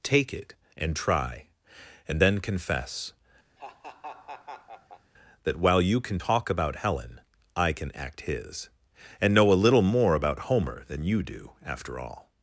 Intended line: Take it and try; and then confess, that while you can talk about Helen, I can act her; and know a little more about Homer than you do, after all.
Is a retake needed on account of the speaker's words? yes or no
yes